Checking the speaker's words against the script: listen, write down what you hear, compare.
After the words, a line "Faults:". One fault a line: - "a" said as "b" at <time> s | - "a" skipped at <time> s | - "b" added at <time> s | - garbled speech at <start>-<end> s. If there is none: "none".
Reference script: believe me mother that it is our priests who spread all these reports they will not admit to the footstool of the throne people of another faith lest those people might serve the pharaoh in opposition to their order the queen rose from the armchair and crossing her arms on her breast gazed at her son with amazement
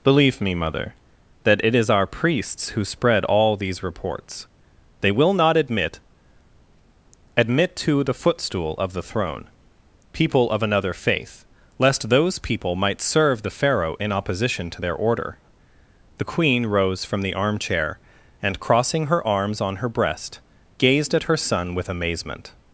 believe me mother that it is our priests who spread all these reports they will not admit admit to the footstool of the throne people of another faith lest those people might serve the pharaoh in opposition to their order the queen rose from the armchair and crossing her arms on her breast gazed at her son with amazement
Faults:
- "admit" added at 7.4 s